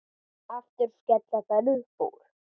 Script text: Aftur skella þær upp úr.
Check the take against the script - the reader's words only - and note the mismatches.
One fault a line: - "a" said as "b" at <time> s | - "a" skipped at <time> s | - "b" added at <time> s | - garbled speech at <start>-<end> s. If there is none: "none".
none